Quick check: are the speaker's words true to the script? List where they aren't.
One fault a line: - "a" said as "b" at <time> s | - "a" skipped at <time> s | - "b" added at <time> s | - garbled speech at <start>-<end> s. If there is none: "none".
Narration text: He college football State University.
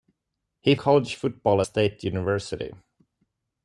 none